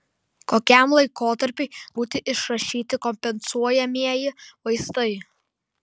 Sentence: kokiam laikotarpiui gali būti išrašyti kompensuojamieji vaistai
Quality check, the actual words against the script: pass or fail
fail